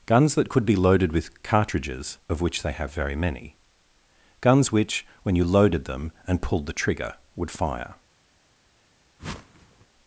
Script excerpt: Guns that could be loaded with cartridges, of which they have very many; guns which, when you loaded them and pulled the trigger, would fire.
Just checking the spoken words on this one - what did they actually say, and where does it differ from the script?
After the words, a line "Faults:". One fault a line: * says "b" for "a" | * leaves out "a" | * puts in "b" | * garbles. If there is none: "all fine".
Guns that could be loaded with cartridges, of which they have very many; guns which, when you loaded them and pulled the trigger, would fire.
Faults:
all fine